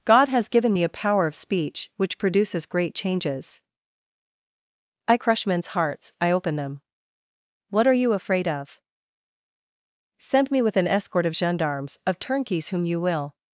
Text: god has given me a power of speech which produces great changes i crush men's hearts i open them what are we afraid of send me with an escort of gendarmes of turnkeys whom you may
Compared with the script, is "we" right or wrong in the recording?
wrong